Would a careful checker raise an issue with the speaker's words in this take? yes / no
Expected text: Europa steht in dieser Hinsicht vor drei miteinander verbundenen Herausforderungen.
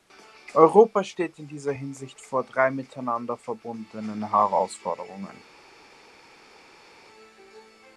no